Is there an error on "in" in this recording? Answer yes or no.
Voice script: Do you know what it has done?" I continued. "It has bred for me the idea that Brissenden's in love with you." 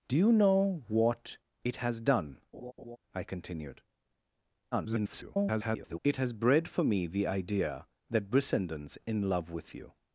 no